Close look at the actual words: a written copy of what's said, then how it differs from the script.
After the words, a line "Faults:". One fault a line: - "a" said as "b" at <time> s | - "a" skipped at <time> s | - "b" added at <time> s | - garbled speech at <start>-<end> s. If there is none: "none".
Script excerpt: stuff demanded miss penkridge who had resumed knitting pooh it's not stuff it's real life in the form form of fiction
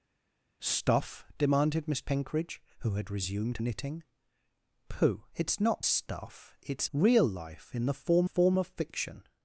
stuff demanded miss penkridge who had resumed knitting pooh it's not stuff it's real life in the form form of fiction
Faults:
none